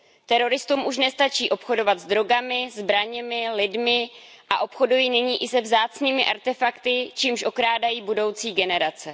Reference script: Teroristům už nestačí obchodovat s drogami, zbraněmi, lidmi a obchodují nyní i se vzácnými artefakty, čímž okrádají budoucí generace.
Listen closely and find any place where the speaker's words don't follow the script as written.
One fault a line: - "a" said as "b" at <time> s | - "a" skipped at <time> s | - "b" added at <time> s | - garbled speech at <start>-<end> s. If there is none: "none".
none